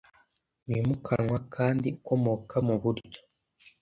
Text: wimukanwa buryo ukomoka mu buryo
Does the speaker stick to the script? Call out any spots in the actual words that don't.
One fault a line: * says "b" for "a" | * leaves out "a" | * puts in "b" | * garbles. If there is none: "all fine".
* says "kandi" for "buryo"